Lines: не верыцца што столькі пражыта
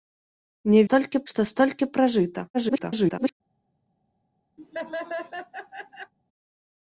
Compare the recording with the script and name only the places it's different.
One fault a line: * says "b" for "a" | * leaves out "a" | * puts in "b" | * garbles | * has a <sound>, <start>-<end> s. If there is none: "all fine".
* says "столькі" for "верыцца"
* garbles
* has a laugh, 4.6-6.1 s